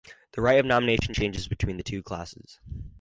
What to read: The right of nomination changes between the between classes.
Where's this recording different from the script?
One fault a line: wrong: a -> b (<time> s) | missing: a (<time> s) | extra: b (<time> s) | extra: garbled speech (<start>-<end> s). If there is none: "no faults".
wrong: between -> two (1.8 s)